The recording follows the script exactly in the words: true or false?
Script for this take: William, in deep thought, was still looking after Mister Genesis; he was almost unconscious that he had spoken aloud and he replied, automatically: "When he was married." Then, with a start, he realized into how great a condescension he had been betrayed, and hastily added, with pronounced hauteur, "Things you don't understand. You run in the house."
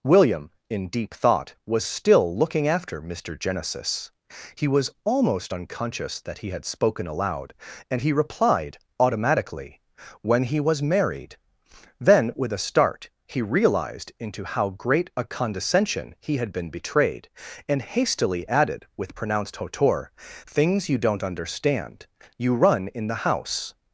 true